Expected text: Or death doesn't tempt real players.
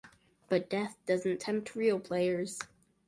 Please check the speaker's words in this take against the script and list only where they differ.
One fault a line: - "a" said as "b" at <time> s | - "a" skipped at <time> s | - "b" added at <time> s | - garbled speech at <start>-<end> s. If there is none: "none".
- "Or" said as "But" at 0.5 s